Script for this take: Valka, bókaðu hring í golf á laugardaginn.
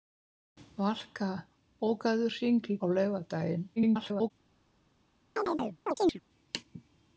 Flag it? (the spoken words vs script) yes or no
yes